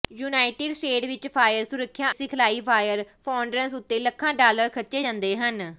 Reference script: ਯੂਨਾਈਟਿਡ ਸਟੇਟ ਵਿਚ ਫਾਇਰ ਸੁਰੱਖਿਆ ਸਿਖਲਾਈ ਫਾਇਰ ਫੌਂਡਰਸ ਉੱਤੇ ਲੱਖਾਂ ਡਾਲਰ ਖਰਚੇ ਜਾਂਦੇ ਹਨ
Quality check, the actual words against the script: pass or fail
pass